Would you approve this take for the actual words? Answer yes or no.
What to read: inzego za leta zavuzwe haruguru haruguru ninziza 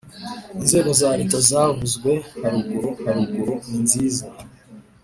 yes